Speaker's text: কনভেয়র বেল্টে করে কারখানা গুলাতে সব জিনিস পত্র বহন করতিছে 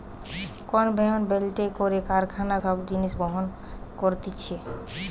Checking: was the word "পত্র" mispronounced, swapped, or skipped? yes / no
yes